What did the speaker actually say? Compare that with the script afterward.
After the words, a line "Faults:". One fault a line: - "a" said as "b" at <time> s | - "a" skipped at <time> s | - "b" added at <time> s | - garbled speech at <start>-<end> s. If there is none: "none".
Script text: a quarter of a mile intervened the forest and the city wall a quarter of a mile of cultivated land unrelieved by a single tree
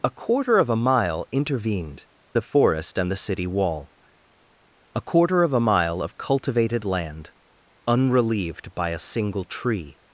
a quarter of a mile intervened the forest and the city wall a quarter of a mile of cultivated land unrelieved by a single tree
Faults:
none